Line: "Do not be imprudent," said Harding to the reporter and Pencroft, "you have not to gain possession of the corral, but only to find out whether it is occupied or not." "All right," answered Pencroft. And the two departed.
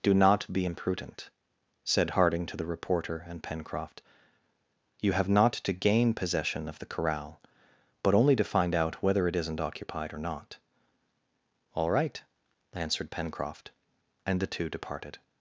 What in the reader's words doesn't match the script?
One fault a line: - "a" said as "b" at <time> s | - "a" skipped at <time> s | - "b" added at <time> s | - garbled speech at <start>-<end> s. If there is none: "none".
- "is" said as "isn't" at 9.3 s